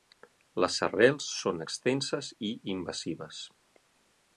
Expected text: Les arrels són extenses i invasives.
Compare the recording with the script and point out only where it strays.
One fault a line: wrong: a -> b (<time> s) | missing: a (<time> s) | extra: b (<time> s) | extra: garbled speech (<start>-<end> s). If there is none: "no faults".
no faults